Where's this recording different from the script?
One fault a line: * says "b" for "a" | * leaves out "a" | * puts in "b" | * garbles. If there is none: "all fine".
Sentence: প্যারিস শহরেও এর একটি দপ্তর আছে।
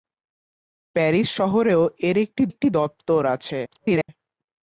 * puts in "একটি"
* garbles